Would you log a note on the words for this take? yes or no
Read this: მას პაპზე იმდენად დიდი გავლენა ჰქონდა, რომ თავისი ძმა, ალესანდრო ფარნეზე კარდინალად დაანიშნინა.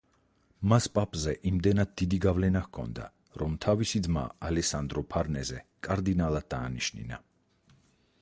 no